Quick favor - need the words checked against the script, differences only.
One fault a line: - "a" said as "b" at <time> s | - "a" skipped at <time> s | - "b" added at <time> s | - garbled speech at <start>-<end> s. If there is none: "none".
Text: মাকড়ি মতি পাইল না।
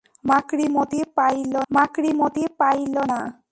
- "মাকড়ি মতি পাইল" added at 1.7 s